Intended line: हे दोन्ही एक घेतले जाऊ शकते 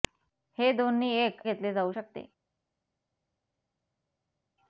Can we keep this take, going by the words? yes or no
yes